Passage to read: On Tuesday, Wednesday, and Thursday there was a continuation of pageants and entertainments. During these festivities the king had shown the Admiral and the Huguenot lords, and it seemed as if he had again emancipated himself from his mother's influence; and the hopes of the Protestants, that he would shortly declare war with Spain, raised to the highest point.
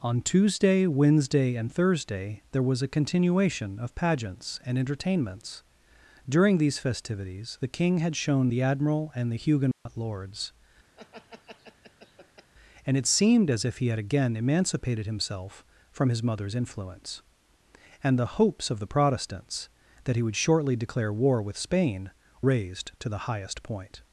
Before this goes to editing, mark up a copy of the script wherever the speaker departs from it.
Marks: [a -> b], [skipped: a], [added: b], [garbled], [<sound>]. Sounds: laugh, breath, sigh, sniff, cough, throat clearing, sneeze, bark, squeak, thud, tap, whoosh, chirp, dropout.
On Tuesday, Wednesday, and Thursday there was a continuation of pageants and entertainments. During these festivities the king had shown the Admiral and the Huguenot [dropout] lords, [laugh] and it seemed as if he had again emancipated himself from his mother's influence; and the hopes of the Protestants, that he would shortly declare war with Spain, raised to the highest point.